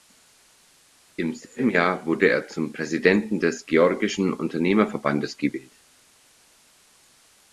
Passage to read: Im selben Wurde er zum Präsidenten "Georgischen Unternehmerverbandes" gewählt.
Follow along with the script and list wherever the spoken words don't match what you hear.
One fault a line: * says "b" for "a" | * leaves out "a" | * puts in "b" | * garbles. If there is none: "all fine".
* puts in "Jahr"
* puts in "des"